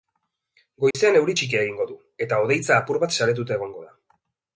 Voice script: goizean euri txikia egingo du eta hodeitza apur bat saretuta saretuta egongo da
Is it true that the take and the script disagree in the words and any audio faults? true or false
true